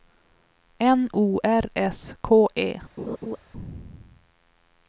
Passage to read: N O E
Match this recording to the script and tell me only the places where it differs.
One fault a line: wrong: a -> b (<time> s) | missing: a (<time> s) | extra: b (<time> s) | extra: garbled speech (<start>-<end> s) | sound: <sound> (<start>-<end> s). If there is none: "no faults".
extra: R S K (1.4 s)
sound: laugh (3.0-3.4 s)